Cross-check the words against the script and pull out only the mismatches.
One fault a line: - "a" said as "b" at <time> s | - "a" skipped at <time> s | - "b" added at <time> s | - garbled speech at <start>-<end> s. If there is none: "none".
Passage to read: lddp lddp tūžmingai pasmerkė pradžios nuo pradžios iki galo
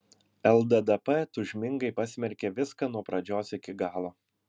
- "lddp" skipped at 1.2 s
- "pradžios" said as "viską" at 2.6 s